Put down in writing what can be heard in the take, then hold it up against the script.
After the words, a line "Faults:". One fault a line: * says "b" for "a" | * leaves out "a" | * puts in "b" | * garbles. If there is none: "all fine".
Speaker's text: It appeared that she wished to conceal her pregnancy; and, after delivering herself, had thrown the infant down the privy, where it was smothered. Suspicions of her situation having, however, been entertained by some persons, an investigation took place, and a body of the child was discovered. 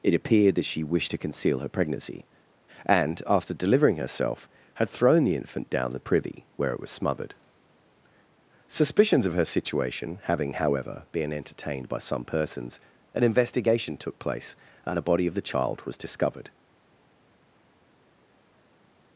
It appeared that she wished to conceal her pregnancy; and, after delivering herself, had thrown the infant down the privy, where it was smothered. Suspicions of her situation having, however, been entertained by some persons, an investigation took place, and a body of the child was discovered.
Faults:
all fine